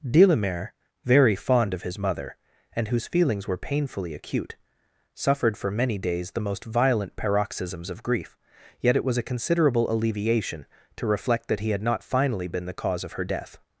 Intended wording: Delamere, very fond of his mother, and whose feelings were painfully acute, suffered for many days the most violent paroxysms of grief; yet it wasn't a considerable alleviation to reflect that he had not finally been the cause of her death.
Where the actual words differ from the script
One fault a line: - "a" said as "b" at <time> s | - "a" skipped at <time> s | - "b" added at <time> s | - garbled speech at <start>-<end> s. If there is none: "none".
- "wasn't" said as "was" at 9.1 s